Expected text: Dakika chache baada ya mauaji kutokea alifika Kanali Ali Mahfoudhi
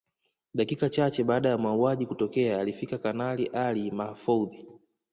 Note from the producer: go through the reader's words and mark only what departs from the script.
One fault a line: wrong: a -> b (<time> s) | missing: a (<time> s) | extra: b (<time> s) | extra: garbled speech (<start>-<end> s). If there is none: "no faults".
no faults